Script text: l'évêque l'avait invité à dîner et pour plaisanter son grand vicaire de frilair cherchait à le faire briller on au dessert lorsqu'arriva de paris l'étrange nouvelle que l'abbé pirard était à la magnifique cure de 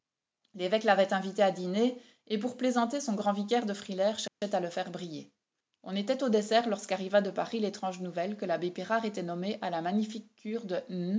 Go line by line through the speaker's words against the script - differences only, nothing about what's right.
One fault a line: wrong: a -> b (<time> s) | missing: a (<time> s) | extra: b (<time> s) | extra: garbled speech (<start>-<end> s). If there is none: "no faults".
extra: était (6.0 s)
extra: nommé (9.2 s)